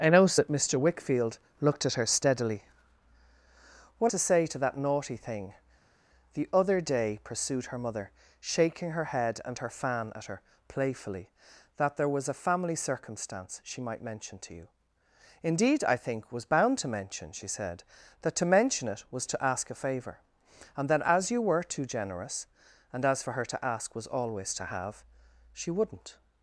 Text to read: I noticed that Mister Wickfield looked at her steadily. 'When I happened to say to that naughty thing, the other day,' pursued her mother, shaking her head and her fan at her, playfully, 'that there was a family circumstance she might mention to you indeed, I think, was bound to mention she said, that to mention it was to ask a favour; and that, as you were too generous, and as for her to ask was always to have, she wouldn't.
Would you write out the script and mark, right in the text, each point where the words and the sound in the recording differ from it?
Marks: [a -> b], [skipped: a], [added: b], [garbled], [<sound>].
I noticed that Mister Wickfield looked at her steadily. 'When [skipped: I happened] to say to that naughty thing, the other day,' pursued her mother, shaking her head and her fan at her, playfully, 'that there was a family circumstance she might mention to you indeed, I think, was bound to mention she said, that to mention it was to ask a favour; and that, as you were too generous, and as for her to ask was always to have, she wouldn't.